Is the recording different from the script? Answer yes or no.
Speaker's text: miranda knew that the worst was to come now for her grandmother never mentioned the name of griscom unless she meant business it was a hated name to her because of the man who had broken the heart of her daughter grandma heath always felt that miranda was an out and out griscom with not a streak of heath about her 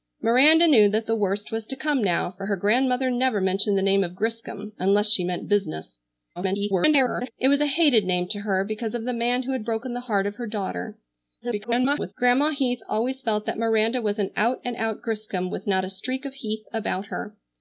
yes